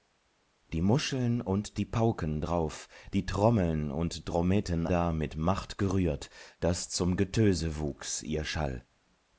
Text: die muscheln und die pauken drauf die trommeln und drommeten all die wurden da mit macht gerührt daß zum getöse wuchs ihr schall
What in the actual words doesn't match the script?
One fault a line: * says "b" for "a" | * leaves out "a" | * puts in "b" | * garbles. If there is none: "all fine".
* leaves out "all die wurden"